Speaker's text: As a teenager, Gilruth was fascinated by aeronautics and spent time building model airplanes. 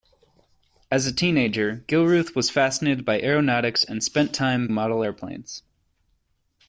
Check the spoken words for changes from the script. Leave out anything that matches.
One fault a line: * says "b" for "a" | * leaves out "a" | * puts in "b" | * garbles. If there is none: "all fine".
* leaves out "building"